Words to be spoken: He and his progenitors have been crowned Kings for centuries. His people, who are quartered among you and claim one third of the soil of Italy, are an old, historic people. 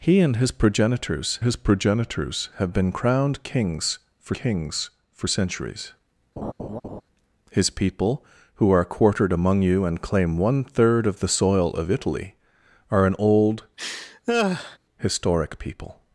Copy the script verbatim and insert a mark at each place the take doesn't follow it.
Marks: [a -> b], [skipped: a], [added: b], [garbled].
He and his progenitors [added: his progenitors] have been crowned Kings for [added: Kings for] centuries. His people, who are quartered among you and claim one third of the soil of Italy, are an old, historic people.